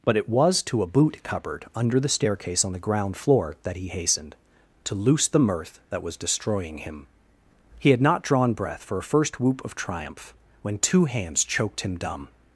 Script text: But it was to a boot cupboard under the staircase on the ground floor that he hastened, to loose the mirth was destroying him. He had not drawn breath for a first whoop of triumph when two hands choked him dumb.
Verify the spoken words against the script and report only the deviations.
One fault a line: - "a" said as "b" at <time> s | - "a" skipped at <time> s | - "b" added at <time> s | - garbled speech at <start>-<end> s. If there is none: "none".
- "that" added at 5.9 s